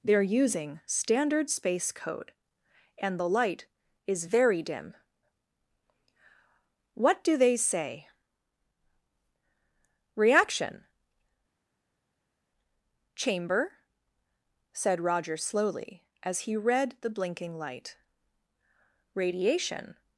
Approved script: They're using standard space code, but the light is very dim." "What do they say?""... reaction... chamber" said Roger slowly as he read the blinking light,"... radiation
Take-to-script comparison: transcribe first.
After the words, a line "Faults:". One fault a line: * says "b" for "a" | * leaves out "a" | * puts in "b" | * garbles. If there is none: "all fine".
They're using standard space code, and the light is very dim." "What do they say?""... reaction... chamber" said Roger slowly as he read the blinking light,"... radiation
Faults:
* says "and" for "but"